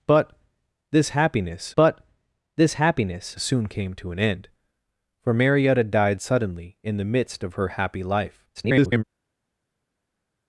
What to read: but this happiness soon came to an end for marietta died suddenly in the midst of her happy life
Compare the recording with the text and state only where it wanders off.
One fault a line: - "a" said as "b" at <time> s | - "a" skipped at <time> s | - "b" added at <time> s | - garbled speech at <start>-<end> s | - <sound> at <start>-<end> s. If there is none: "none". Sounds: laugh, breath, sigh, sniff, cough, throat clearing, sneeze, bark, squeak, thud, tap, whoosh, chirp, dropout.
- "but this happiness" added at 1.8 s
- garbled speech at 8.5-9.0 s